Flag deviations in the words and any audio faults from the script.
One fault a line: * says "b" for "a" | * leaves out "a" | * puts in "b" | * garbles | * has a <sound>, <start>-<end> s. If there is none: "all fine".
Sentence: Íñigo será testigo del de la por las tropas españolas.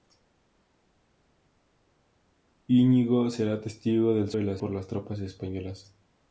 all fine